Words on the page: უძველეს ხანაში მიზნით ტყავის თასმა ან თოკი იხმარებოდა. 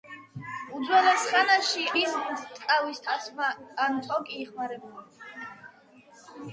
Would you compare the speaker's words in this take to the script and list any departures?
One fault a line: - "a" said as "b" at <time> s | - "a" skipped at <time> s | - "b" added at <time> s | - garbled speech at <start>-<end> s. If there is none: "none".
none